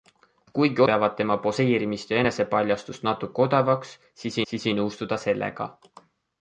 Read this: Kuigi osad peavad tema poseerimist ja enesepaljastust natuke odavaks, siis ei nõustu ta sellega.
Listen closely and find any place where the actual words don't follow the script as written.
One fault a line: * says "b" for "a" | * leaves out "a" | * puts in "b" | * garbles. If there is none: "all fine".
* leaves out "osad"
* puts in "siis"